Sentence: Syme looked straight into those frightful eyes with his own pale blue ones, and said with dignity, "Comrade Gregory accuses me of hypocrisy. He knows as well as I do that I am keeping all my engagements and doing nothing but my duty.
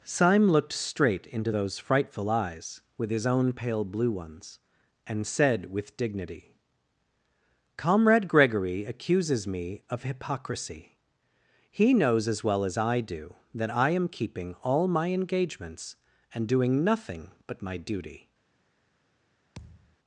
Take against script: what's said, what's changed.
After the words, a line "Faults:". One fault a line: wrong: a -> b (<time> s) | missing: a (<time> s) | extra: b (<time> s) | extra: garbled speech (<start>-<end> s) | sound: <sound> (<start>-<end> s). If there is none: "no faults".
Syme looked straight into those frightful eyes with his own pale blue ones, and said with dignity, "Comrade Gregory accuses me of hypocrisy. He knows as well as I do that I am keeping all my engagements and doing nothing but my duty.
Faults:
sound: thud (19.6-20.0 s)